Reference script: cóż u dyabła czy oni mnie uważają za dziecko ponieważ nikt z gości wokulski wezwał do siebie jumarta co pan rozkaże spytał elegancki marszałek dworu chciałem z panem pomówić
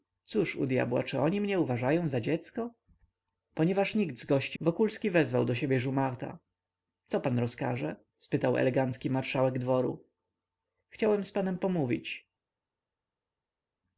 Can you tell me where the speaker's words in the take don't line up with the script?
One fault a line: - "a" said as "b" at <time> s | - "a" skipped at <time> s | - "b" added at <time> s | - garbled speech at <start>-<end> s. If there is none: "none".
none